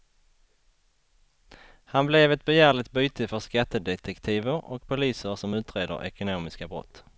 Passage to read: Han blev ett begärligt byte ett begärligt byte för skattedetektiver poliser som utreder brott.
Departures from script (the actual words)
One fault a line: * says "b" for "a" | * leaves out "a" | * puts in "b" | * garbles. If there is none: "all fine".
* leaves out "ett begärligt byte"
* puts in "och"
* puts in "ekonomiska"